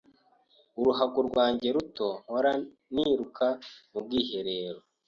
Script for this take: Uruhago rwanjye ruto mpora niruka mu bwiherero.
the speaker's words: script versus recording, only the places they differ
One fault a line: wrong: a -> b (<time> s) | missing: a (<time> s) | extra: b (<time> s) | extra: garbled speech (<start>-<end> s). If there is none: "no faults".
no faults